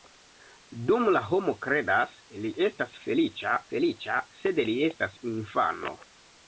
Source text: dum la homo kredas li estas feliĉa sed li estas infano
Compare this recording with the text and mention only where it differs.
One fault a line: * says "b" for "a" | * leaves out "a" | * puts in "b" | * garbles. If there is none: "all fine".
* puts in "feliĉa"